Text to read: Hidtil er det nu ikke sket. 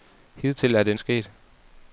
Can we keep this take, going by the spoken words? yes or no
no